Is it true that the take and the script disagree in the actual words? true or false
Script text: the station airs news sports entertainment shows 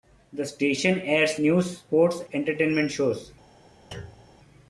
false